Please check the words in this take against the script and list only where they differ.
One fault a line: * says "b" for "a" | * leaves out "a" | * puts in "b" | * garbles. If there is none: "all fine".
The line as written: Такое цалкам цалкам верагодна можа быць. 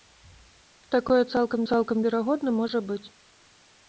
all fine